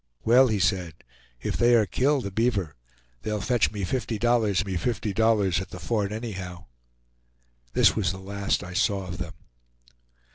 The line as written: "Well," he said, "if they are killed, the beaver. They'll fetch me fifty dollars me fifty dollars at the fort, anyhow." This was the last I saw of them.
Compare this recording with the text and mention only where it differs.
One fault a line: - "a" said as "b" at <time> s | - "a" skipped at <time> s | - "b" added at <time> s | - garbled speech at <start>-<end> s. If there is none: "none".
none